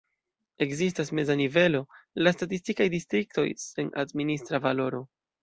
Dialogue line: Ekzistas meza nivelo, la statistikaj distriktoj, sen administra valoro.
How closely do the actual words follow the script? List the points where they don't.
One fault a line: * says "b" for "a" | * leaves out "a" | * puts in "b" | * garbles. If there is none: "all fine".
all fine